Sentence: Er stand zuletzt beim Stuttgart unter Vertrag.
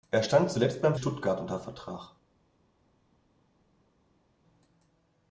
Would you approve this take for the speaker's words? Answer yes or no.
yes